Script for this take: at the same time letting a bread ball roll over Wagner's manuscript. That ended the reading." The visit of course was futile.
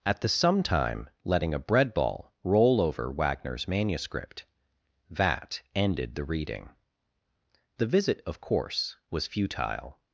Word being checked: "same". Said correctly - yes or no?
no